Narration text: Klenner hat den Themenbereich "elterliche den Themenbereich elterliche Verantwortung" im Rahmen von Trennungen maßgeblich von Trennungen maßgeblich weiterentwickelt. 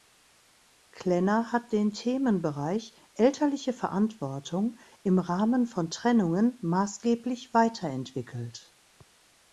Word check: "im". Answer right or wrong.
right